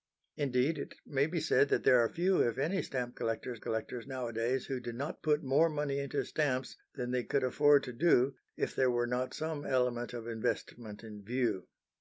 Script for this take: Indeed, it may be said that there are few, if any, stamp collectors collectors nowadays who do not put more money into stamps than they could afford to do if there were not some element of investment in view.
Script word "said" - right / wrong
right